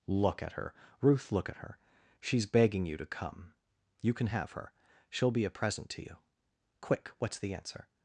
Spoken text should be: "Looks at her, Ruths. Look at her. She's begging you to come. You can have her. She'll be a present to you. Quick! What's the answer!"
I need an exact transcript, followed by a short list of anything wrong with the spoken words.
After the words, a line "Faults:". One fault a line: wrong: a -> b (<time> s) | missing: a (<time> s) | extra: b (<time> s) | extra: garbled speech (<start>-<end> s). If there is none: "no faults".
"Look at her, Ruth. Look at her. She's begging you to come. You can have her. She'll be a present to you. Quick! What's the answer!"
Faults:
wrong: Looks -> Look (0.1 s)
wrong: Ruths -> Ruth (1.0 s)